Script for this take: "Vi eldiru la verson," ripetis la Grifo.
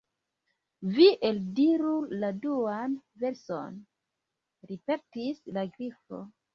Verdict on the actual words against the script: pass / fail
fail